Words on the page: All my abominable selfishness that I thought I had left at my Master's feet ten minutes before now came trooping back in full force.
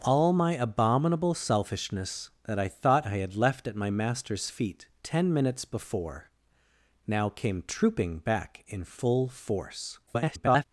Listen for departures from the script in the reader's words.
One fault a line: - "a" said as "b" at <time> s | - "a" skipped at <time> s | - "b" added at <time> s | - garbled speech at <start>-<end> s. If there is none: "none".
- garbled speech at 10.1-10.6 s